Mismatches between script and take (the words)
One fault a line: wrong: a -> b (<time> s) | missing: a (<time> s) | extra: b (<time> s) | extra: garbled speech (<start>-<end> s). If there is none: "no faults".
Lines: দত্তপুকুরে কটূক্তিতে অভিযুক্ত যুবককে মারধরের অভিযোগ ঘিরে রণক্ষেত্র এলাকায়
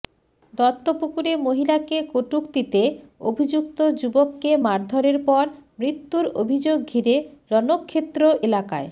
extra: মহিলাকে (1.4 s)
extra: পর মৃত্যুর (5.3 s)